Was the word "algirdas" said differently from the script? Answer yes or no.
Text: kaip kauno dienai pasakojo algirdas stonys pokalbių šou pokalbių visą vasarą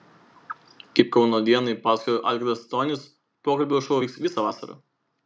no